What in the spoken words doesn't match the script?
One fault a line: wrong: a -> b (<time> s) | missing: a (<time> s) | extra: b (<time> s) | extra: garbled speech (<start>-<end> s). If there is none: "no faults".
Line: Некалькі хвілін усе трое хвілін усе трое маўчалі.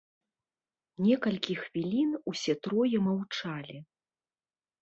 missing: хвілін усе трое (3.0 s)